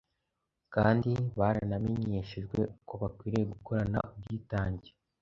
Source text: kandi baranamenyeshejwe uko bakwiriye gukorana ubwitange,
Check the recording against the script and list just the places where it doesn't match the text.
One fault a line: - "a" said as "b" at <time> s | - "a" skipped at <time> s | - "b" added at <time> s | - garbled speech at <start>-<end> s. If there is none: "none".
none